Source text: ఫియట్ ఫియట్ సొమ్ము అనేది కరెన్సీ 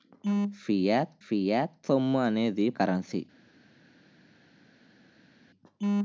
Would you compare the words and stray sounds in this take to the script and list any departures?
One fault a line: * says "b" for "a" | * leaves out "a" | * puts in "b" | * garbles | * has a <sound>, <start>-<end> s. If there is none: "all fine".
all fine